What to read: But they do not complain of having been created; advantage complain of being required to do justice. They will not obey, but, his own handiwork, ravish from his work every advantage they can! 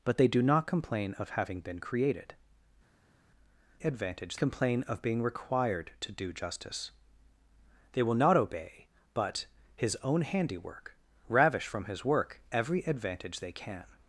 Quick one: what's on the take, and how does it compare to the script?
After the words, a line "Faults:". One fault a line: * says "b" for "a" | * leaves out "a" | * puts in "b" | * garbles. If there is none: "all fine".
But they do not complain of having been created; advantage complain of being required to do justice. They will not obey, but, his own handiwork, ravish from his work every advantage they can!
Faults:
all fine